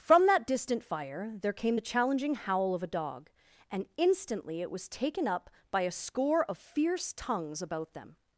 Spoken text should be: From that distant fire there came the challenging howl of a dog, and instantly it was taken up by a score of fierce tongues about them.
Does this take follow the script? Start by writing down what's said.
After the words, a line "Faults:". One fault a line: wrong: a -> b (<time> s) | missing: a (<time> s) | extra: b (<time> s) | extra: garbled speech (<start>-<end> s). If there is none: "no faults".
From that distant fire there came the challenging howl of a dog, and instantly it was taken up by a score of fierce tongues about them.
Faults:
no faults